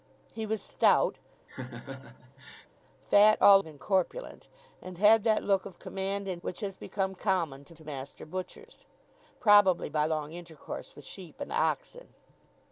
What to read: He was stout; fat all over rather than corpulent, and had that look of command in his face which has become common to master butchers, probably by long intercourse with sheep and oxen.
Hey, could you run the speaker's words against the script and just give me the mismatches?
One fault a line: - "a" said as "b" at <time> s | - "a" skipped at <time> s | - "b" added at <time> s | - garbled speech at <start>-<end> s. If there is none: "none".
- "over rather" skipped at 3.6 s
- "his face" skipped at 6.4 s
- "to" added at 7.7 s